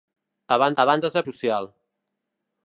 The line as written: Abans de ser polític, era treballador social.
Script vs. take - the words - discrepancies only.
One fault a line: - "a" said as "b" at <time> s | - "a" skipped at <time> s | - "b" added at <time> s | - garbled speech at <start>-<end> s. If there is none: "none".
- "abans" added at 0.8 s
- "polític era treballador" skipped at 1.2 s